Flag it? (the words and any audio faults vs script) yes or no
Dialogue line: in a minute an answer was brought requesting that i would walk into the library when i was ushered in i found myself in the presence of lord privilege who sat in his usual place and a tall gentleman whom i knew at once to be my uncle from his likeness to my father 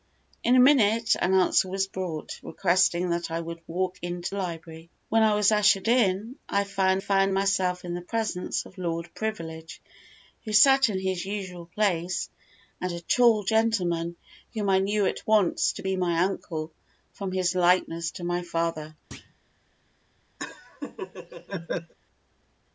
yes